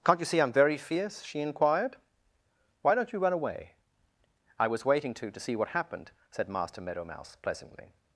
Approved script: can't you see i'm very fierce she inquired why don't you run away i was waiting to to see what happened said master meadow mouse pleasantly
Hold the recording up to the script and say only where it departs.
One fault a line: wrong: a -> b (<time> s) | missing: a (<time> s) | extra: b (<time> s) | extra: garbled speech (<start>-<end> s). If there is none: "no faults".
no faults